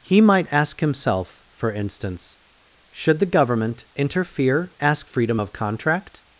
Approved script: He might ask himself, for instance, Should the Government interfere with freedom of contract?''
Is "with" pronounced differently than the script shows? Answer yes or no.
yes